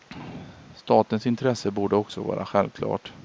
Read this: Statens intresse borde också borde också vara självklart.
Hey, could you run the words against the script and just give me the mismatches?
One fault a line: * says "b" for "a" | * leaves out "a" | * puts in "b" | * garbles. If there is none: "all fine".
* leaves out "borde också"